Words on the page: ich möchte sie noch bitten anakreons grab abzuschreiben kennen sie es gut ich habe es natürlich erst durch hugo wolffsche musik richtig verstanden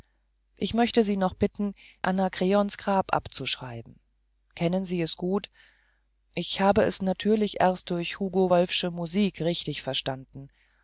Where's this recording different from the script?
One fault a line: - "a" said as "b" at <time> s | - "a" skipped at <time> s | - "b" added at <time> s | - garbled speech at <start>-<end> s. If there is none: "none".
none